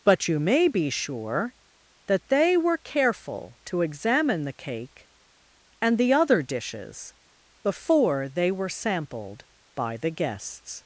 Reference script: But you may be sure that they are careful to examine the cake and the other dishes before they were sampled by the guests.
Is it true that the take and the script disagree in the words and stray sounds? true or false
true